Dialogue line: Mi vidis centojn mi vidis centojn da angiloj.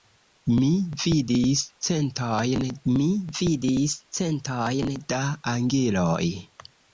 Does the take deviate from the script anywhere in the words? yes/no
no